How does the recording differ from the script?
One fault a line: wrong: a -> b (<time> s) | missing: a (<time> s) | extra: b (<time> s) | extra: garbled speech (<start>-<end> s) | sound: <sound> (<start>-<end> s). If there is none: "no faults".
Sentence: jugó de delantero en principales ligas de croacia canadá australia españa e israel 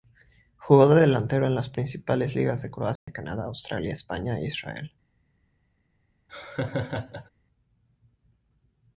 extra: las (1.5 s)
sound: dropout (3.0-3.1 s)
sound: laugh (6.3-7.3 s)